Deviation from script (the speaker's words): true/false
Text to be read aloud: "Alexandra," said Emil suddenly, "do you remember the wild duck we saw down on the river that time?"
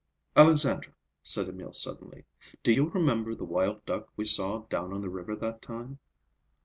false